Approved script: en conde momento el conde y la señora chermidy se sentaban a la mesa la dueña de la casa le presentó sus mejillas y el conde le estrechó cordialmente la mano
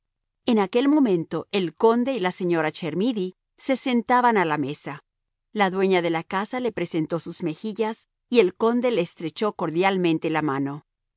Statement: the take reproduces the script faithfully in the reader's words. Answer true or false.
false